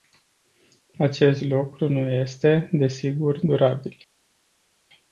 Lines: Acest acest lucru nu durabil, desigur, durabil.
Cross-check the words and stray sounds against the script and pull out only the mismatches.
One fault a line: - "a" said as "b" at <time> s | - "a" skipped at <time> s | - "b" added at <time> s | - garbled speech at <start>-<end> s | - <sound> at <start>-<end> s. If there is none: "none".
- "acest" skipped at 1.4 s
- "durabil" said as "este" at 2.1 s